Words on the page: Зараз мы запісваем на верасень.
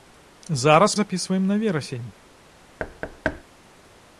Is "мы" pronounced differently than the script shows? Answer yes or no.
yes